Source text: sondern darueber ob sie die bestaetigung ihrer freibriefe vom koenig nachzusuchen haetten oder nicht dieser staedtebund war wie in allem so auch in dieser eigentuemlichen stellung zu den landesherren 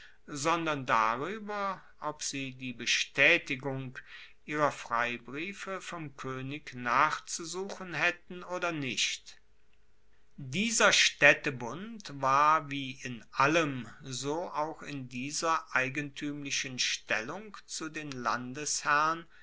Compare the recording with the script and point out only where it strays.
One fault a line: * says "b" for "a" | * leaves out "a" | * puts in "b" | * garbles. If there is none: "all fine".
all fine